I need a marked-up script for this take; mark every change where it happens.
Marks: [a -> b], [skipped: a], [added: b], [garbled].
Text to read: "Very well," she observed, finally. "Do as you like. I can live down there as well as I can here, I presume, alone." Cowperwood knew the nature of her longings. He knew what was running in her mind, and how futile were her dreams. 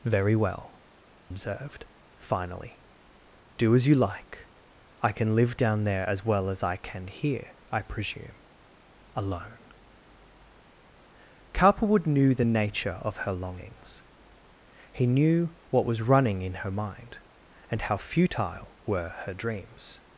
"Very well," [skipped: she] observed, finally. "Do as you like. I can live down there as well as I can here, I presume, alone." Cowperwood knew the nature of her longings. He knew what was running in her mind, and how futile were her dreams.